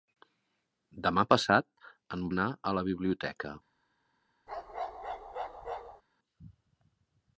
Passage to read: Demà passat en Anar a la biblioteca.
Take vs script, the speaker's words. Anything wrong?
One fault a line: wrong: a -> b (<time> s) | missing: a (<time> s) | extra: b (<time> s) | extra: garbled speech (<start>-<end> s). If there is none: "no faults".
no faults